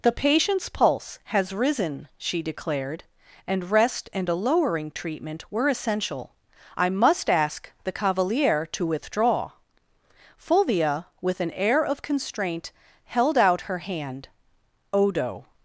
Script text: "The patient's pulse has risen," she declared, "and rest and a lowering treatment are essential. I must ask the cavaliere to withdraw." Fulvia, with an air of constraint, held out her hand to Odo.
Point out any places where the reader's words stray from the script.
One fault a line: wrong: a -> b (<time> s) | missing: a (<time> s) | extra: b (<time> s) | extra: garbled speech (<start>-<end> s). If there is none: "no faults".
wrong: are -> were (5.5 s)
missing: to (14.3 s)